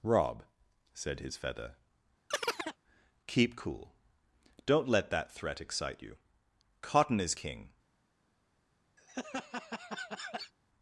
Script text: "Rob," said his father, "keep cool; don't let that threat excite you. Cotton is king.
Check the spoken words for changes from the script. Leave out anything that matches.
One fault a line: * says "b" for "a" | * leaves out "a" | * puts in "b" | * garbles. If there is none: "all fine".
* says "feather" for "father"